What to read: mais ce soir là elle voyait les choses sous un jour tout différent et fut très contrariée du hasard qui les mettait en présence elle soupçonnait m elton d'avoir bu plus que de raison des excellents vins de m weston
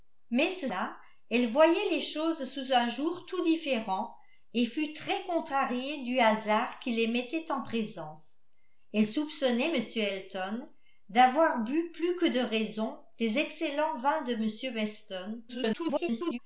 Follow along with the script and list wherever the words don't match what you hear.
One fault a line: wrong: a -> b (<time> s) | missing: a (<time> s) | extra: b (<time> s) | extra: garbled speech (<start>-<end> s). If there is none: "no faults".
missing: soir (0.7 s)
extra: garbled speech (15.5-16.4 s)